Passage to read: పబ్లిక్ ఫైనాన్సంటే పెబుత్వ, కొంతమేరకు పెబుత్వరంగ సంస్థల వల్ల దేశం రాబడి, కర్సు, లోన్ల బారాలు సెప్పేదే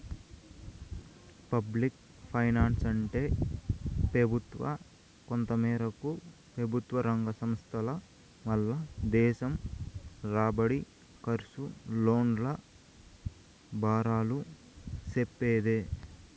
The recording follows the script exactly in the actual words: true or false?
true